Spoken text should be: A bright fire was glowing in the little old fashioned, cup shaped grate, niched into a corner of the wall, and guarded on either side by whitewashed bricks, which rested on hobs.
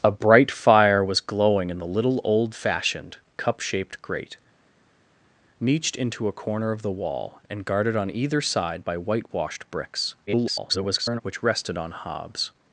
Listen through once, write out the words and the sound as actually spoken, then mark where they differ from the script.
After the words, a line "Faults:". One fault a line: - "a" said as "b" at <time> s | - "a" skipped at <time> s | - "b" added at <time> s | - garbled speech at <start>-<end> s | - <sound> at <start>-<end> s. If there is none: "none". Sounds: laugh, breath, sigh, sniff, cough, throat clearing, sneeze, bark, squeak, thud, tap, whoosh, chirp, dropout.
A bright fire was glowing in the little old fashioned, cup shaped grate, niched into a corner of the wall, and guarded on either side by whitewashed bricks, [garbled] which rested on hobs.
Faults:
- garbled speech at 10.3-11.2 s